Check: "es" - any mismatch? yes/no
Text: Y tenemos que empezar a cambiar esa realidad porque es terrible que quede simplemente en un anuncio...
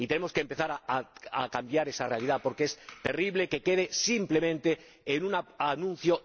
no